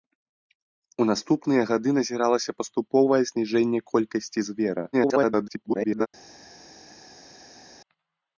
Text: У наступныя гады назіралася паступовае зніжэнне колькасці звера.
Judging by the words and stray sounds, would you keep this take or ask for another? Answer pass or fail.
fail